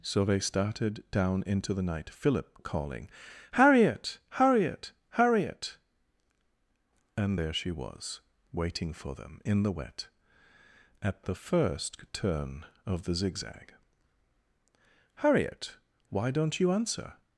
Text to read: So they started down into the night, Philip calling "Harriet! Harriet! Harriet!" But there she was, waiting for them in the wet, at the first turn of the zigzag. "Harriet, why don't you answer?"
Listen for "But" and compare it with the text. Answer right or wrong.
wrong